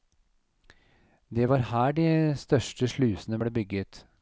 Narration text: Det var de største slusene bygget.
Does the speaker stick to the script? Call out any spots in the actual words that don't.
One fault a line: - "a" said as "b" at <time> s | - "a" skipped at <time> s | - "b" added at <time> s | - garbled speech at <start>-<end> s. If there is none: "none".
- "her" added at 1.6 s
- "ble" added at 3.4 s